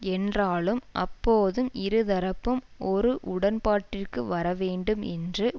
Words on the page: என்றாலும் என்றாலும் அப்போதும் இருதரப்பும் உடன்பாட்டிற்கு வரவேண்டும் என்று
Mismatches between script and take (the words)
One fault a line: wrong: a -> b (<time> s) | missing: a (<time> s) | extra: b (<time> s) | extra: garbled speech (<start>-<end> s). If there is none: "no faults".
missing: என்றாலும் (0.8 s)
extra: ஒரு (2.9 s)